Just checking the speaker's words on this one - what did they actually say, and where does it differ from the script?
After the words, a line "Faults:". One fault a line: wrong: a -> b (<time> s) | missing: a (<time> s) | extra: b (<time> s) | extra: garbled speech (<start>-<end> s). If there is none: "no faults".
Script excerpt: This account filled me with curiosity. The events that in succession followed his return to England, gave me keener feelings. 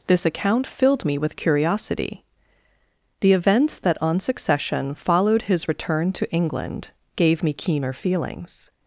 This account filled me with curiosity. The events that on succession followed his return to England, gave me keener feelings.
Faults:
wrong: in -> on (4.0 s)